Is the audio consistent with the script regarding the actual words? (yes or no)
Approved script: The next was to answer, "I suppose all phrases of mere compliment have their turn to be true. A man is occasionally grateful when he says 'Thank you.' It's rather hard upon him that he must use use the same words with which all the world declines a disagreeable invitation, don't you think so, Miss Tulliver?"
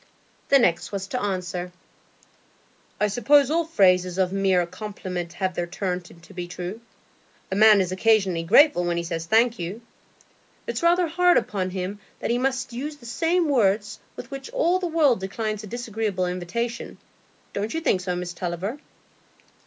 no